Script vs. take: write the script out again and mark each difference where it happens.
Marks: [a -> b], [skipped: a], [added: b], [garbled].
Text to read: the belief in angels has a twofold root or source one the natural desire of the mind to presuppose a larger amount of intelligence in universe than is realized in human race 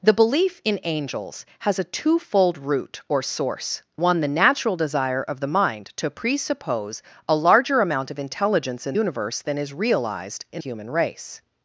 the belief in angels has a twofold root or source one the natural desire of the mind to presuppose a larger amount of intelligence in universe than is realized in human race